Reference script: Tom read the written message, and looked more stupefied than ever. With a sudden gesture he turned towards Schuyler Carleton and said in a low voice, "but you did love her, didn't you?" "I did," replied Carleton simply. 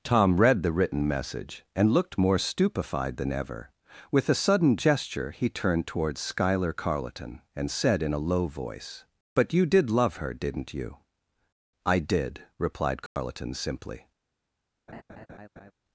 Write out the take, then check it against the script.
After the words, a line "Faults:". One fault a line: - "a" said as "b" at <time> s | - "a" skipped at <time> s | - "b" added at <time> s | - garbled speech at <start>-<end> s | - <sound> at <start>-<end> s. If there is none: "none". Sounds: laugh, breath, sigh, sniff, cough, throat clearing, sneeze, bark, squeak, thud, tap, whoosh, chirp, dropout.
Tom read the written message, and looked more stupefied than ever. With a sudden gesture he turned towards Schuyler Carleton and said in a low voice, "but you did love her, didn't you?" "I did," replied Carleton simply.
Faults:
- dropout at 13.1-13.2 s
- laugh at 14.9-15.7 s